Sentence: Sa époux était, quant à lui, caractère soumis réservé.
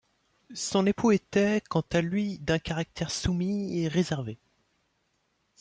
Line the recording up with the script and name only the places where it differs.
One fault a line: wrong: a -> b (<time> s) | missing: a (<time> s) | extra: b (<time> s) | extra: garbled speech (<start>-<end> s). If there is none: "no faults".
wrong: Sa -> Son (0.6 s)
extra: d'un (2.4 s)
extra: et (3.8 s)